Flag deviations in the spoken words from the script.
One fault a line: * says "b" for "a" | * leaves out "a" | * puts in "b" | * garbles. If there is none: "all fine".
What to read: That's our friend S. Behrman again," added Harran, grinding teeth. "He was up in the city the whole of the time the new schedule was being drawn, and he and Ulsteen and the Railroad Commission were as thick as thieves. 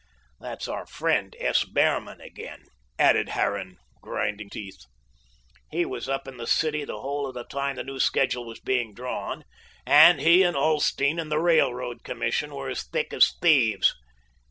all fine